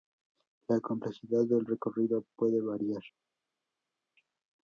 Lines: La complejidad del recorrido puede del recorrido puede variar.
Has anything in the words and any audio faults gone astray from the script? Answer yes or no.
yes